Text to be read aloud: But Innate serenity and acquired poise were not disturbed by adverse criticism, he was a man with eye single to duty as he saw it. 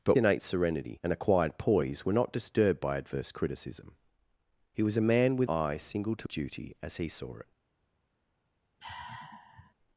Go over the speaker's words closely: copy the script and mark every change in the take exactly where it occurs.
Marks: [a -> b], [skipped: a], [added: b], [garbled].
But Innate serenity and acquired poise were not disturbed by adverse criticism, he was a man with eye single to duty as he saw it.